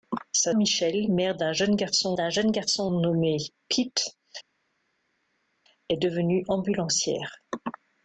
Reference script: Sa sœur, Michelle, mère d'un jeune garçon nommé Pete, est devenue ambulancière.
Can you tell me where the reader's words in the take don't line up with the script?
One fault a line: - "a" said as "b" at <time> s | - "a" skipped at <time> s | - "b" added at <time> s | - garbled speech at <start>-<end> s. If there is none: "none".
- "sœur" skipped at 0.5 s
- "d'un jeune garçon" added at 2.1 s